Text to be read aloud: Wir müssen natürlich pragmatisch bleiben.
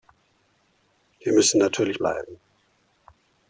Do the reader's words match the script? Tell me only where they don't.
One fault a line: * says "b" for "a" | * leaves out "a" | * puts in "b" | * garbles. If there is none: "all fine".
* leaves out "pragmatisch"